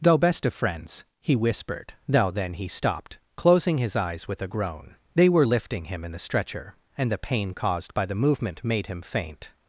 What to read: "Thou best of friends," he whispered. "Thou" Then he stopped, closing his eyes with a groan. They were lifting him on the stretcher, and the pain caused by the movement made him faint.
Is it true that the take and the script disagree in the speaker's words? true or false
true